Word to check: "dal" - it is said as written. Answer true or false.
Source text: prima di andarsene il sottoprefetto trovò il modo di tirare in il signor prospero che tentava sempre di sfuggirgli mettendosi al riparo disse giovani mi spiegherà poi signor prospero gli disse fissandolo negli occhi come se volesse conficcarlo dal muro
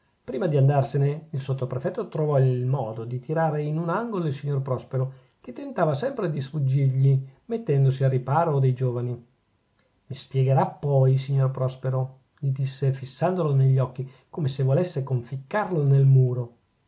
false